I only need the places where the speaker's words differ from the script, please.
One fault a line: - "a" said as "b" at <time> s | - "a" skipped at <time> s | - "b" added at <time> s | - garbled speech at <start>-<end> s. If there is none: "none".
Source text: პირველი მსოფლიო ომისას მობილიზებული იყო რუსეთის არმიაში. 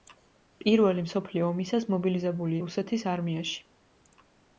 - "იყო" skipped at 2.6 s